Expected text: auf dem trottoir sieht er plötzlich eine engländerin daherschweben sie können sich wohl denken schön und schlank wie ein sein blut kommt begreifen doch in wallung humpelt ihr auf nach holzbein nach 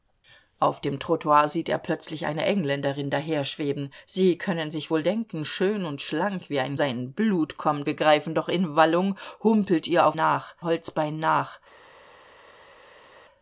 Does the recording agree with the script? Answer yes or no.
yes